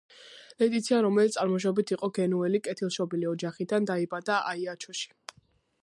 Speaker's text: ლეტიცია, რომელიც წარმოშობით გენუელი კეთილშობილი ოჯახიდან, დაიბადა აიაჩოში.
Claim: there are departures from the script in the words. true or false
true